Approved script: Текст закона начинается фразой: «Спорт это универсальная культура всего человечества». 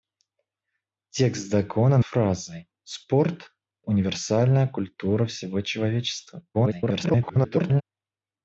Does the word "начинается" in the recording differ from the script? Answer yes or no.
yes